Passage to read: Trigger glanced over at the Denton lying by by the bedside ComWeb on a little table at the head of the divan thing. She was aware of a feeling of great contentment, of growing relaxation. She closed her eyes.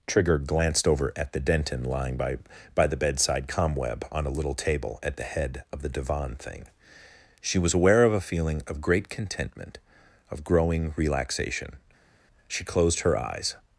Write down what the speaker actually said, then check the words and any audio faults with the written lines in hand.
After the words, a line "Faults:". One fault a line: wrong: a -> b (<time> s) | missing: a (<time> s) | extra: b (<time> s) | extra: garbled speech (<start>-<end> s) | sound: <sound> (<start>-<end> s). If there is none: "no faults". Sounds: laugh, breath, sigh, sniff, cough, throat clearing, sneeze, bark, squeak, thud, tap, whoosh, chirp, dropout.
Trigger glanced over at the Denton lying by by the bedside ComWeb on a little table at the head of the divan thing. She was aware of a feeling of great contentment, of growing relaxation. She closed her eyes.
Faults:
no faults